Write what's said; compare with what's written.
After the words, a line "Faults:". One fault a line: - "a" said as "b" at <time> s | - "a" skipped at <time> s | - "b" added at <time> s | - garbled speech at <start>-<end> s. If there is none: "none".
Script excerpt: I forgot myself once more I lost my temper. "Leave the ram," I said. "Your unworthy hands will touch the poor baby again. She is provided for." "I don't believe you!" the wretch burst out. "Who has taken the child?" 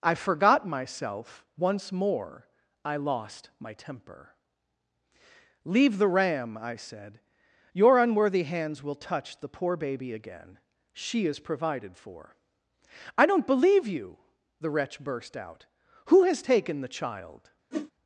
I forgot myself once more I lost my temper. "Leave the ram," I said. "Your unworthy hands will touch the poor baby again. She is provided for." "I don't believe you!" the wretch burst out. "Who has taken the child?"
Faults:
none